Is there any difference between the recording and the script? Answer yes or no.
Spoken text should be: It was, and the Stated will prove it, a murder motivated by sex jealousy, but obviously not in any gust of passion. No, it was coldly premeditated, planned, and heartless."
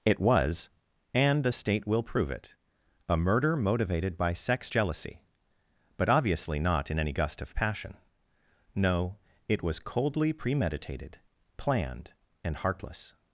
yes